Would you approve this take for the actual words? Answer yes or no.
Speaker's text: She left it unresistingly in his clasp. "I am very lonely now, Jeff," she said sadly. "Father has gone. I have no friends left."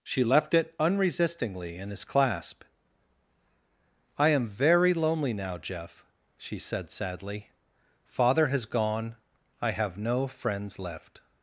yes